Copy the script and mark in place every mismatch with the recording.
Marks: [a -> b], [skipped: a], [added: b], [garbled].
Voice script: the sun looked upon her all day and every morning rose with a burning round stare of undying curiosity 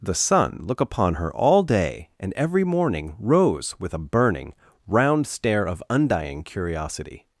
the sun [looked -> look] upon her all day and every morning rose with a burning round stare of undying curiosity